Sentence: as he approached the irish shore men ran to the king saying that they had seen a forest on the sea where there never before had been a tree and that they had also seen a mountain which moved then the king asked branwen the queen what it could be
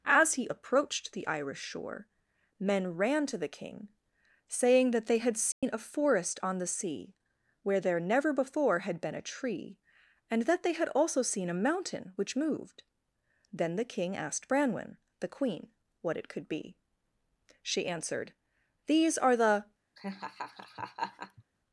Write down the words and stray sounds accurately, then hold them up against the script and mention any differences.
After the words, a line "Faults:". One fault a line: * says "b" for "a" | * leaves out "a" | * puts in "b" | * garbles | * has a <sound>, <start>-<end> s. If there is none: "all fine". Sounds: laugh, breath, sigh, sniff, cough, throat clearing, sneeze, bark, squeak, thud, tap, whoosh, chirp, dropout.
as he approached the irish shore men ran to the king saying that they had seen a forest on the sea where there never before had been a tree and that they had also seen a mountain which moved then the king asked branwen the queen what it could be she answered these are the
Faults:
* has a dropout, 5.5-5.6 s
* puts in "she answered these are the"
* has a laugh, 20.0-21.4 s